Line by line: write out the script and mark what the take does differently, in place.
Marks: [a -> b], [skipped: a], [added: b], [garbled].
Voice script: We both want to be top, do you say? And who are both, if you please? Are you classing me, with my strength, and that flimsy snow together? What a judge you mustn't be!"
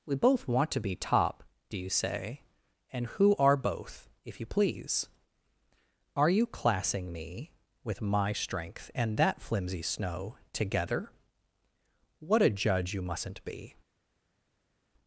We both want to be top, do you say? And who are both, if you please? Are you classing me, with my strength, and that flimsy snow together? What a judge you mustn't be!"